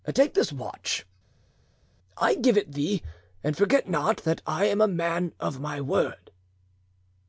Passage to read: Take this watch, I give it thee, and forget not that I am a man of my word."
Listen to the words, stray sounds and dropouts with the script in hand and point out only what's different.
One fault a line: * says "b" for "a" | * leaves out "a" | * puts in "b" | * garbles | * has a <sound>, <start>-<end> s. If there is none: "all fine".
all fine